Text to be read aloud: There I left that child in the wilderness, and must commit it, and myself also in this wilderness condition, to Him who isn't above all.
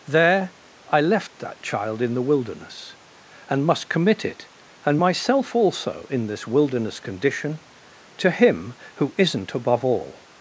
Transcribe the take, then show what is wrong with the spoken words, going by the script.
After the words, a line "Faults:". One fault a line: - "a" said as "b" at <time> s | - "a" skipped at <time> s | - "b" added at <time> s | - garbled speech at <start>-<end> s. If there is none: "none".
There I left that child in the wilderness, and must commit it, and myself also in this wilderness condition, to Him who isn't above all.
Faults:
none